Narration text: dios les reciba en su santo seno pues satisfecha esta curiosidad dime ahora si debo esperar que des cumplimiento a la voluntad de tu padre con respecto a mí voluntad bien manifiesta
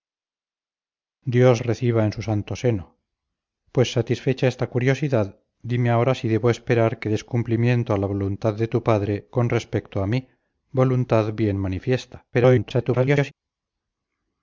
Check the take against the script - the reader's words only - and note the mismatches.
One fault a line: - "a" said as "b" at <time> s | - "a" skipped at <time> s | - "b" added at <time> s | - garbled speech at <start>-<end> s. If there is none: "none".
- "les" skipped at 1.6 s
- garbled speech at 12.3-13.3 s